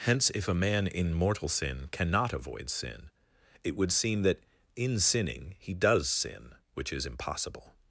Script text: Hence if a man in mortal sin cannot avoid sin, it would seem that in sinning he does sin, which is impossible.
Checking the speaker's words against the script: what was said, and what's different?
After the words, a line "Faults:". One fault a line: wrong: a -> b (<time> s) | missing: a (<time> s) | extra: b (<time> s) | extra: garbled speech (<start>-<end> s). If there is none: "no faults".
Hence if a man in mortal sin cannot avoid sin, it would seem that in sinning he does sin, which is impossible.
Faults:
no faults